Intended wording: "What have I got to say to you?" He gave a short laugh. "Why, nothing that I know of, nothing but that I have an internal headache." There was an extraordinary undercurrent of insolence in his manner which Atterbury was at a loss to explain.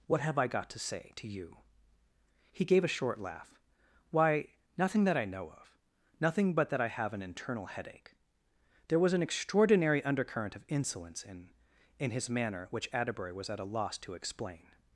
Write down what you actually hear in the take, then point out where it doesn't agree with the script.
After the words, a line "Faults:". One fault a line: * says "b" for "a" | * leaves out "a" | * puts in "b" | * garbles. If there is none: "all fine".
"What have I got to say to you?" He gave a short laugh. "Why, nothing that I know of, nothing but that I have an internal headache." There was an extraordinary undercurrent of insolence in in his manner which Atterbury was at a loss to explain.
Faults:
* puts in "in"